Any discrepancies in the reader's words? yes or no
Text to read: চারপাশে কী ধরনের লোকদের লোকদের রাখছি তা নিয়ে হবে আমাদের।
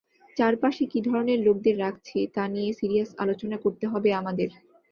yes